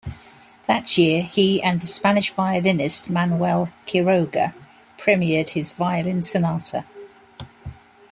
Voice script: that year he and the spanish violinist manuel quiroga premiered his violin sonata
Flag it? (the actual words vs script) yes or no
no